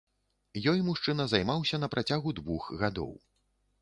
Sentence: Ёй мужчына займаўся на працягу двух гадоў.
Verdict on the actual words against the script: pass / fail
pass